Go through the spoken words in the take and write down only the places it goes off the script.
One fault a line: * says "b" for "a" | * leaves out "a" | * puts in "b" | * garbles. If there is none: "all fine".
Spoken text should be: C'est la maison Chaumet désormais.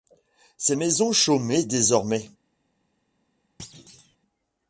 * leaves out "la"